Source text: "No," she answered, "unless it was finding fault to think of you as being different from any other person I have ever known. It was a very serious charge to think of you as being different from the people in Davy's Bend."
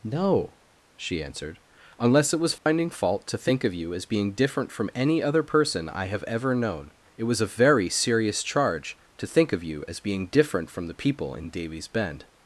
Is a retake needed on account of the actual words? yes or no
no